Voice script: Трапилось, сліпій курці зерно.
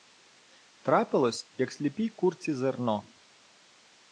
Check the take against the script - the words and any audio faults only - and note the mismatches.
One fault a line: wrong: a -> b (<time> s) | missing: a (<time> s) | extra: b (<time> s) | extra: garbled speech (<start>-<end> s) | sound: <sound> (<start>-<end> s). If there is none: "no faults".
extra: як (1.6 s)